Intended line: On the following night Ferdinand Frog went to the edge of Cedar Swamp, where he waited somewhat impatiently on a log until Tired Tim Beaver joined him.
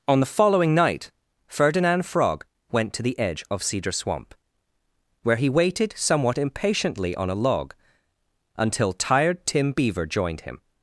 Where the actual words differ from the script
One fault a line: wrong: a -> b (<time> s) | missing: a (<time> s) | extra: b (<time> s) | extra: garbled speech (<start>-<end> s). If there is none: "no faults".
no faults